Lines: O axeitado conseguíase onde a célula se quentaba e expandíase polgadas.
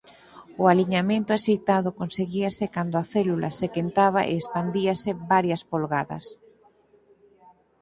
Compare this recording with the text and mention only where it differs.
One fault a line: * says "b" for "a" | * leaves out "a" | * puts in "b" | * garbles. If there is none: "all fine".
* puts in "aliñamento"
* says "cando" for "onde"
* puts in "varias"